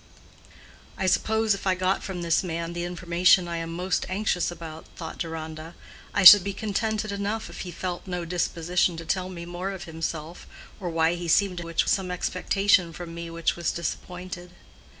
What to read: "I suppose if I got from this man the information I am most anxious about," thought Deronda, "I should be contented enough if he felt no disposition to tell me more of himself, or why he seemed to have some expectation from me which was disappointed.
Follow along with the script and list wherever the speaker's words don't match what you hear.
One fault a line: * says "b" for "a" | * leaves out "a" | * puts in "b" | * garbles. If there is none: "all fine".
* says "which" for "have"